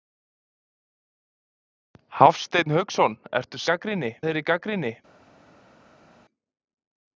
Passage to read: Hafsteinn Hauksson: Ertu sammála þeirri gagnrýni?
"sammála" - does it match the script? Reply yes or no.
no